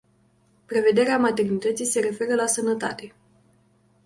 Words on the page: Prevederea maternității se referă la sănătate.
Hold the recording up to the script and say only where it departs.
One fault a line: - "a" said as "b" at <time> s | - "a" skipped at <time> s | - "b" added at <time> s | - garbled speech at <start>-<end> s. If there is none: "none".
none